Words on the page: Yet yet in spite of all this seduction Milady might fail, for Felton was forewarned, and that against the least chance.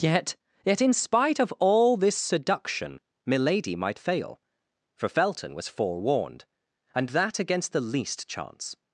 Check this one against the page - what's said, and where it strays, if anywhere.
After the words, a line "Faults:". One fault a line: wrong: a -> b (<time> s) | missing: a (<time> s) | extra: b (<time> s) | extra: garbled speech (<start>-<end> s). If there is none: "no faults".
Yet yet in spite of all this seduction Milady might fail, for Felton was forewarned, and that against the least chance.
Faults:
no faults